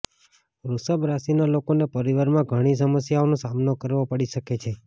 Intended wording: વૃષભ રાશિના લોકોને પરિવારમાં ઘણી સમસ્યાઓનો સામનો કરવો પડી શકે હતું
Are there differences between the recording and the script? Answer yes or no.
yes